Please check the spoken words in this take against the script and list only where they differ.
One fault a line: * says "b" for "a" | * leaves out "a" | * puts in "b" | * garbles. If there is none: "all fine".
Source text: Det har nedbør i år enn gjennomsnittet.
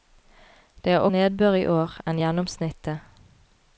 all fine